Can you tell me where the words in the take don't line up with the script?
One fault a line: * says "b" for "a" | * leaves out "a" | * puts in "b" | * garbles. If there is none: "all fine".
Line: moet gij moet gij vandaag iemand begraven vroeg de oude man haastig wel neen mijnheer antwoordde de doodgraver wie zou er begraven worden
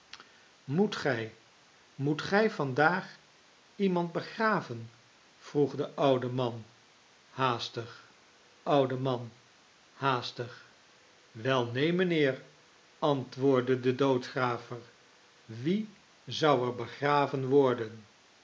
* puts in "oude man haastig"